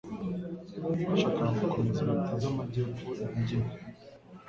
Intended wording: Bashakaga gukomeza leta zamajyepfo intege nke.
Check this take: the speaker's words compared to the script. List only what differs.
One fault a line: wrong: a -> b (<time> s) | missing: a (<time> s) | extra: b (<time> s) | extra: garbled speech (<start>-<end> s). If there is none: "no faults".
no faults